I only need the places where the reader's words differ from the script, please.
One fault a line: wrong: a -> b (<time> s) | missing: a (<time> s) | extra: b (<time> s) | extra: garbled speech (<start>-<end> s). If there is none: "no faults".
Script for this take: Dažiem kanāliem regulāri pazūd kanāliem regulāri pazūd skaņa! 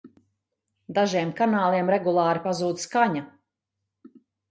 missing: kanāliem regulāri pazūd (2.8 s)